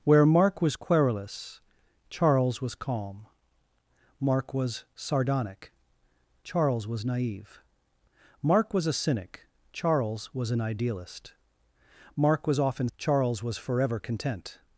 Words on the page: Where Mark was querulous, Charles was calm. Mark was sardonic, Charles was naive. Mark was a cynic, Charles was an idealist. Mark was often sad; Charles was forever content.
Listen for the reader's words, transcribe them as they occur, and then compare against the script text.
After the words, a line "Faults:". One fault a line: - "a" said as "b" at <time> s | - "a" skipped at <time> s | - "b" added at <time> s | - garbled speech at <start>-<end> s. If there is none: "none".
Where Mark was querulous, Charles was calm. Mark was sardonic, Charles was naive. Mark was a cynic, Charles was an idealist. Mark was often; Charles was forever content.
Faults:
- "sad" skipped at 12.9 s